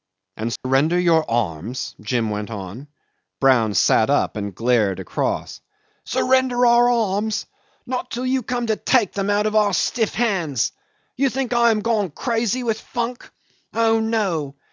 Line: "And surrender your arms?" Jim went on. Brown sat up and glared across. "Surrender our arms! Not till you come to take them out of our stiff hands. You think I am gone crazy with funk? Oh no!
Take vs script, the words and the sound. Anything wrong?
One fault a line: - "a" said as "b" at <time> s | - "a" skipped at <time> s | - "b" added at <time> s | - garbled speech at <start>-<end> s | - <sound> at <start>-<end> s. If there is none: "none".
- dropout at 0.6-0.6 s